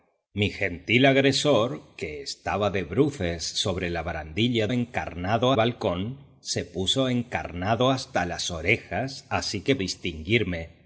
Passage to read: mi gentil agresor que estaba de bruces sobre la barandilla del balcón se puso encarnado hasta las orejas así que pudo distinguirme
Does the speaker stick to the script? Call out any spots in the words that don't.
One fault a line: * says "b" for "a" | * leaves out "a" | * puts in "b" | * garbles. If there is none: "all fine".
* says "encarnado" for "del"
* leaves out "pudo"